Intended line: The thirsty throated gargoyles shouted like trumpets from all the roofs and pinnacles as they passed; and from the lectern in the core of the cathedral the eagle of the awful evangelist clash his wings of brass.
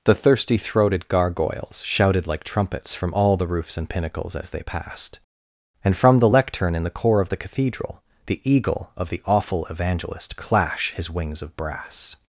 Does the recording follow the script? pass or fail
pass